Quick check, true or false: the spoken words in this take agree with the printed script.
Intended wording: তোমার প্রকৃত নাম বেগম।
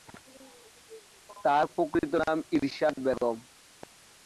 false